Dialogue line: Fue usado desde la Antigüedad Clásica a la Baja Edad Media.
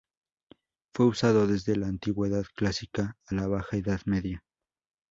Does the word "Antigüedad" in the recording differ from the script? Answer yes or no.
no